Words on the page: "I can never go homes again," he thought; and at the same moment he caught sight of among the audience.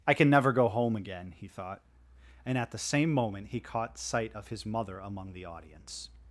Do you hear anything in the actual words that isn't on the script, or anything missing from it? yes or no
yes